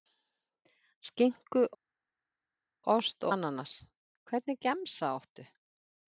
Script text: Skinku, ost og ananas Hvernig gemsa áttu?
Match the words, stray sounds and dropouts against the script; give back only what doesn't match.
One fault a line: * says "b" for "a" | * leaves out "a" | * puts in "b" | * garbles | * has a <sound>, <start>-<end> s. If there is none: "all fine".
* leaves out "og"